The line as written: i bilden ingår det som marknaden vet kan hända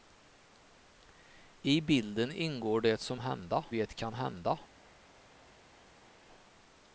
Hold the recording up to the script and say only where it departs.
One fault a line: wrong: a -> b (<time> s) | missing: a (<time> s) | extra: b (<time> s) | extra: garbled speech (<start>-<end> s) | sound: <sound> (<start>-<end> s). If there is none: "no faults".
wrong: marknaden -> hända (3.2 s)